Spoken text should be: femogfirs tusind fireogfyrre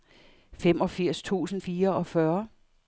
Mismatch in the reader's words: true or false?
false